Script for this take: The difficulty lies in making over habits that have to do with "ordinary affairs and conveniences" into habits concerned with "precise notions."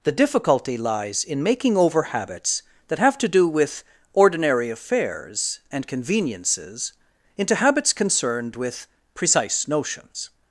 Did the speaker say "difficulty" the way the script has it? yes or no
yes